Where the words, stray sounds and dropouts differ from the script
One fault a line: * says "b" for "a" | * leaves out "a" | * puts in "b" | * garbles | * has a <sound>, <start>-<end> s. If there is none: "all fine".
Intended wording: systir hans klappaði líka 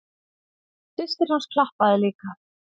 all fine